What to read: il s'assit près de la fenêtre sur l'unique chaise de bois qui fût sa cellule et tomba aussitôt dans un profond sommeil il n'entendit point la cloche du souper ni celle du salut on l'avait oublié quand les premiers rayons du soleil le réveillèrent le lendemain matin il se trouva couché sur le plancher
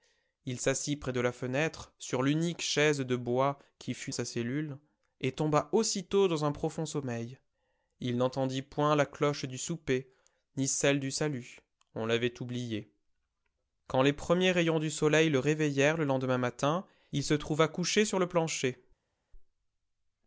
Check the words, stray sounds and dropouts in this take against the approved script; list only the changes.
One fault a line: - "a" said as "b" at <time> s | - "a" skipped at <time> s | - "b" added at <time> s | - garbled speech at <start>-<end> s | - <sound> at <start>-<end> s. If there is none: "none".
none